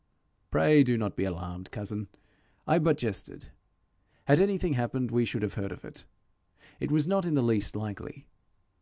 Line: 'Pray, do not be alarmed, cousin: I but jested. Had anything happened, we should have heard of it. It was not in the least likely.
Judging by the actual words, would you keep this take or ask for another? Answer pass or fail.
pass